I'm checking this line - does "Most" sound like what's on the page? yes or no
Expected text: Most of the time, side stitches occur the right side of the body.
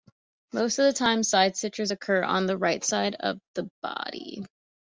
yes